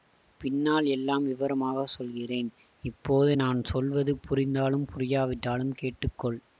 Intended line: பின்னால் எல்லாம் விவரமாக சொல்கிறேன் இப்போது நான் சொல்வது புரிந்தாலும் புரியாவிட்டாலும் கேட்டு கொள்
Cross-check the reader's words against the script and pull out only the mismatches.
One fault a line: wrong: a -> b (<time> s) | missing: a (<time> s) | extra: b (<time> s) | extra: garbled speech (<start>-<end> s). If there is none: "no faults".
no faults